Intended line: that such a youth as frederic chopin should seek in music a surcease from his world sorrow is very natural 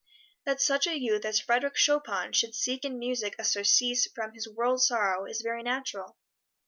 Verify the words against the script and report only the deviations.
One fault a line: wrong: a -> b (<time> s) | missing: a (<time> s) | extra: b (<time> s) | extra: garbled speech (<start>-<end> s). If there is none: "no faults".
no faults